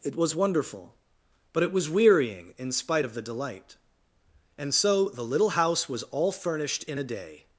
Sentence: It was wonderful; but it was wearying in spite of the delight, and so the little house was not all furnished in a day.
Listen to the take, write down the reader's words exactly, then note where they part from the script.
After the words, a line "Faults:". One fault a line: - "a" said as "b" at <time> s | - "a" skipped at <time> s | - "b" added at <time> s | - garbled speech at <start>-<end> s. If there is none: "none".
It was wonderful; but it was wearying in spite of the delight, and so the little house was all furnished in a day.
Faults:
- "not" skipped at 6.0 s